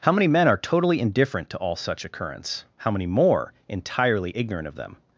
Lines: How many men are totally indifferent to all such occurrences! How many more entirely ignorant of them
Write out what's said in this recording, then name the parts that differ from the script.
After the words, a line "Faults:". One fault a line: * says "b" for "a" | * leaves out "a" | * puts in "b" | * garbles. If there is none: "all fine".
How many men are totally indifferent to all such occurrence! How many more entirely ignorant of them
Faults:
* says "occurrence" for "occurrences"